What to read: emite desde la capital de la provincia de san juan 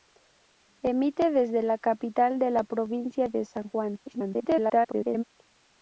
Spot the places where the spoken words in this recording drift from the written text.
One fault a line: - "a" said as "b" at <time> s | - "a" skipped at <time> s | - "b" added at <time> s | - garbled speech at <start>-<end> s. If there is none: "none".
- garbled speech at 4.1-5.2 s